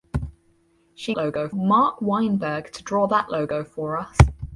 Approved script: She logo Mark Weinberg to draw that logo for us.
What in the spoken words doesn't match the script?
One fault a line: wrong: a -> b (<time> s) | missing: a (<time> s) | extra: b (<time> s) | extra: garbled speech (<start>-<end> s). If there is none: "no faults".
no faults